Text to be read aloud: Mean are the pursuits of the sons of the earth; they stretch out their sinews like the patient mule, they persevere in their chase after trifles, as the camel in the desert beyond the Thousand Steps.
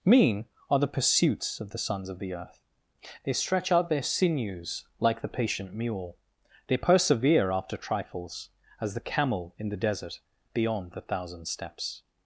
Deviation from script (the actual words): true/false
true